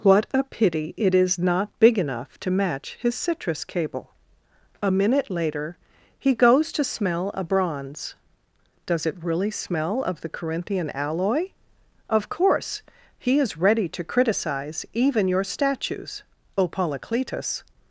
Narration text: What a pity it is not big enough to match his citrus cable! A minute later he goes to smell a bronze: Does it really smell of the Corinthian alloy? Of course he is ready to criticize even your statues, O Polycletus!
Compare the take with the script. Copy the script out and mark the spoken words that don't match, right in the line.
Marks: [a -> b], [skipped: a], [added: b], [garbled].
What a pity it is not big enough to match his citrus cable! A minute later he goes to smell a bronze: Does it really smell of the Corinthian alloy? Of course he is ready to criticize even your statues, O Polycletus!